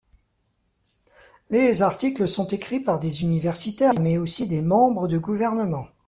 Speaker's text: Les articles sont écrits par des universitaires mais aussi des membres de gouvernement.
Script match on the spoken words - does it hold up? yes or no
yes